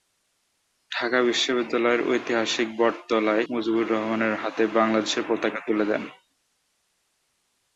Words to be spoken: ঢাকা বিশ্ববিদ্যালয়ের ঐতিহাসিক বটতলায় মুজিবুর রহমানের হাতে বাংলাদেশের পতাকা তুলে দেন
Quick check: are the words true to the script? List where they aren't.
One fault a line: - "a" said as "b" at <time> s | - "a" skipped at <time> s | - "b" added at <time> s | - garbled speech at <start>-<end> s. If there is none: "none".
none